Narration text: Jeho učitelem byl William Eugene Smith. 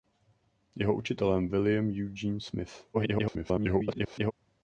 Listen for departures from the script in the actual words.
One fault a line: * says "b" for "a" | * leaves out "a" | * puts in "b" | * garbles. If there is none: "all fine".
* leaves out "byl"
* garbles